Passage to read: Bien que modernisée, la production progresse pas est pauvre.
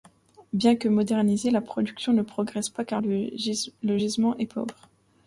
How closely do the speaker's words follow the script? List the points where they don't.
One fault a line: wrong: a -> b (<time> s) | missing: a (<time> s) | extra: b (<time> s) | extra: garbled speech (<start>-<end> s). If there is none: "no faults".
extra: ne (2.1 s)
extra: car le gisement (2.8 s)